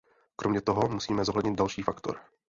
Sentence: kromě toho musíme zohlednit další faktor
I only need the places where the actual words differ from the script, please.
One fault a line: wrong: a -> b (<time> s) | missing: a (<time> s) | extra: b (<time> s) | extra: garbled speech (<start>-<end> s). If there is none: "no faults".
no faults